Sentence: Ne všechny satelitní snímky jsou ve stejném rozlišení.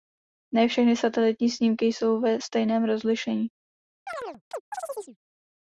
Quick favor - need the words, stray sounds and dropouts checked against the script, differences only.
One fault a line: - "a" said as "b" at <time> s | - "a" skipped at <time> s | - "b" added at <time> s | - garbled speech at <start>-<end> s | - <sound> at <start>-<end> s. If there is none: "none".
- chirp at 4.1-5.2 s